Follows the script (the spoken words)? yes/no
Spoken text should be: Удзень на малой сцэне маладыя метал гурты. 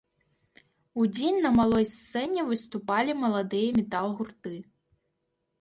no